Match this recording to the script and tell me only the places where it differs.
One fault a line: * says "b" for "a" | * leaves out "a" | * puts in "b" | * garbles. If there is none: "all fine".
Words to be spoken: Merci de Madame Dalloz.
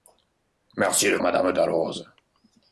all fine